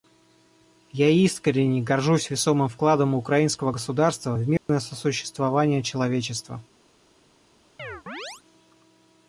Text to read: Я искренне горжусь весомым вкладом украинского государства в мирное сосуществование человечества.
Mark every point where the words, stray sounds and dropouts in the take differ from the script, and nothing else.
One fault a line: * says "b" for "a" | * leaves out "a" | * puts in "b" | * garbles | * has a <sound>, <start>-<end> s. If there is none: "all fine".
* has a dropout, 4.6-4.7 s
* has a chirp, 7.8-8.4 s